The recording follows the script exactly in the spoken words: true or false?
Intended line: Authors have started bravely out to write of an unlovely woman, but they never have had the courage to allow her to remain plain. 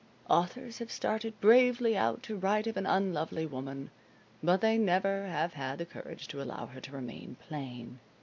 true